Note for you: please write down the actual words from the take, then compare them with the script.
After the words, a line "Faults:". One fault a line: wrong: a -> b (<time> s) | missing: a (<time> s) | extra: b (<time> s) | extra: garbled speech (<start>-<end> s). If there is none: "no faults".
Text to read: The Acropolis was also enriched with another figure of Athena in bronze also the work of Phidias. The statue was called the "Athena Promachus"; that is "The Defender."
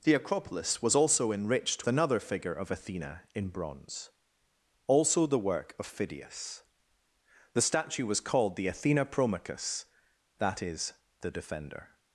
The Acropolis was also enriched another figure of Athena in bronze also the work of Phidias. The statue was called the "Athena Promachus"; that is "The Defender."
Faults:
missing: with (1.9 s)